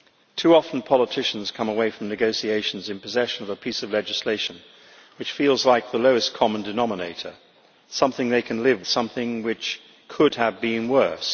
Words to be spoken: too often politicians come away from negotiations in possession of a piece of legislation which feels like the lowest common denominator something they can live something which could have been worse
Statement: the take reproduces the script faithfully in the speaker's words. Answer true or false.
true